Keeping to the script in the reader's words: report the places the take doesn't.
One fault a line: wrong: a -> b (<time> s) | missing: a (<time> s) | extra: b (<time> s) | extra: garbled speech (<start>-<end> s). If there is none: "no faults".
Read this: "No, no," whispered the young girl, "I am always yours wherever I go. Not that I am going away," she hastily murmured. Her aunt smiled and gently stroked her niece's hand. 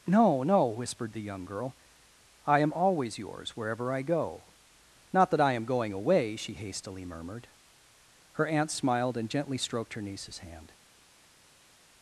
no faults